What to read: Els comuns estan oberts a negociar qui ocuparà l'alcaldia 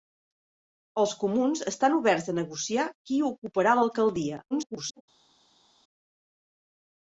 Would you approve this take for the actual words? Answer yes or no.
no